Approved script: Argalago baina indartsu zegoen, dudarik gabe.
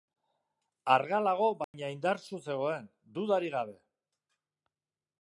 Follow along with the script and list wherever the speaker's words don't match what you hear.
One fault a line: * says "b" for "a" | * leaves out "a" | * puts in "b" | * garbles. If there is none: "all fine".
all fine